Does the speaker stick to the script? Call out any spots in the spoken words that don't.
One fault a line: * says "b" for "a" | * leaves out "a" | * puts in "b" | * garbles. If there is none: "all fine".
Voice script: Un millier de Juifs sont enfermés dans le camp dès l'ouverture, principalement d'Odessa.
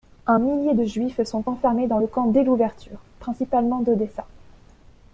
all fine